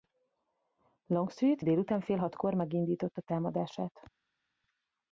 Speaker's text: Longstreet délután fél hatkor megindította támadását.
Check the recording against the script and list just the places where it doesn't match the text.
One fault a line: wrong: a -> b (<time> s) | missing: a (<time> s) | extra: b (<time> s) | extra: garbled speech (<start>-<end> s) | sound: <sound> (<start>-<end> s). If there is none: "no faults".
no faults